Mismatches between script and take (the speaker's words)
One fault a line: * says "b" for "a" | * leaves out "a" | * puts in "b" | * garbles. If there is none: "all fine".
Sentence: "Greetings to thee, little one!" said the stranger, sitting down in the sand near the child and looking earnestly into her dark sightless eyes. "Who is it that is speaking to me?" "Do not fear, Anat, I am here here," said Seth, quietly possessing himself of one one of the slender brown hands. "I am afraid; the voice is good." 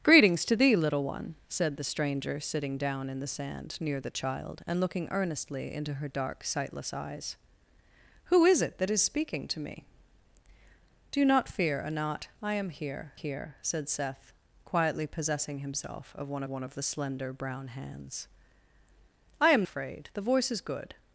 all fine